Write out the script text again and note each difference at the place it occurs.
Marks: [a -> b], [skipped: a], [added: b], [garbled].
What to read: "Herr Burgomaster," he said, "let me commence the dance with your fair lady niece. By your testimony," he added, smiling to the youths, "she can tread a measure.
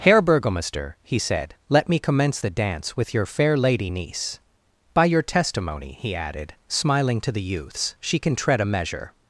"Herr Burgomaster," he said, "let me commence the dance with your fair lady niece. By your testimony," he added, smiling to the youths, "she can tread a measure.